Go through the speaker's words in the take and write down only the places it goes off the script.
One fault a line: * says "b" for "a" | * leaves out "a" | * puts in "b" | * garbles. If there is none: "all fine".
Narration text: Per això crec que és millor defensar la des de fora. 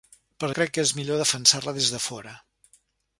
* leaves out "això"